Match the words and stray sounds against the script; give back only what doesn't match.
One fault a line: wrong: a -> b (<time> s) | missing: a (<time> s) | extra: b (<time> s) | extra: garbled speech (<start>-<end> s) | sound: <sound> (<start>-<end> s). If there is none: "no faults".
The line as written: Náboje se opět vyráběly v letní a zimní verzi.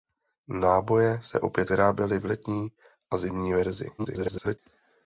extra: garbled speech (4.0-4.6 s)